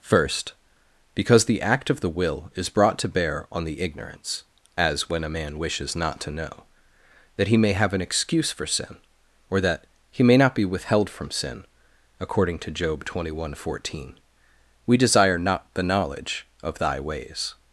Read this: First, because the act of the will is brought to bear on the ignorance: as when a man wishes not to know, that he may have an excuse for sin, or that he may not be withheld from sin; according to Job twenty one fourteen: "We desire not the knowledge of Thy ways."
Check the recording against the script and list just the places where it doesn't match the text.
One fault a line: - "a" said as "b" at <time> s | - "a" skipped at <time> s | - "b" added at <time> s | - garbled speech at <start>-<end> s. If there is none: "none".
none